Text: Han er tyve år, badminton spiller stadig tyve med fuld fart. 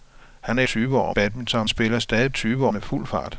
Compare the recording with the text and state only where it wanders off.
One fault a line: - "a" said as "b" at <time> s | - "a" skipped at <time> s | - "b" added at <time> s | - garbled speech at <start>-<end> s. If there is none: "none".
none